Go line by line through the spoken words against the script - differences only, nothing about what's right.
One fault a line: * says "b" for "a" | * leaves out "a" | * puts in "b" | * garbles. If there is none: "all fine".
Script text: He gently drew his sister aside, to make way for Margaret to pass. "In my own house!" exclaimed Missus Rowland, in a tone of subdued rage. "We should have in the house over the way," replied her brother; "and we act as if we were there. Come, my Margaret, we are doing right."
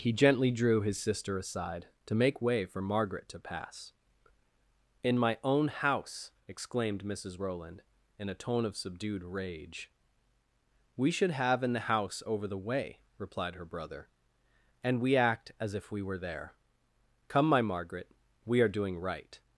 all fine